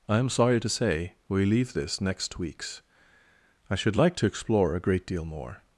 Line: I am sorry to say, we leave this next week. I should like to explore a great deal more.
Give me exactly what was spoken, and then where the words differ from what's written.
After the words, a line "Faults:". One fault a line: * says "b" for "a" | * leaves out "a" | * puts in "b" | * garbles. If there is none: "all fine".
I am sorry to say, we leave this next weeks. I should like to explore a great deal more.
Faults:
* says "weeks" for "week"